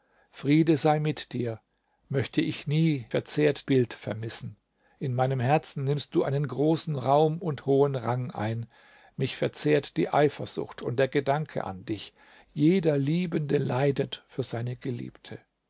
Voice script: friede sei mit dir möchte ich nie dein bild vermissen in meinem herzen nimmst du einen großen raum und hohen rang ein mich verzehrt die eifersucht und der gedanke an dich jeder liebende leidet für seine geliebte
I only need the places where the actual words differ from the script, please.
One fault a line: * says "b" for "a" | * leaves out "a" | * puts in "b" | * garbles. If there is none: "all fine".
* says "verzehrt" for "dein"